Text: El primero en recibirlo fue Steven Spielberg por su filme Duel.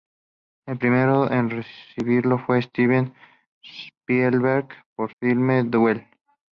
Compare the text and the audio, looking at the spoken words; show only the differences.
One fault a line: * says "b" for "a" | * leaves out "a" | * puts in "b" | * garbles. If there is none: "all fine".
* leaves out "su"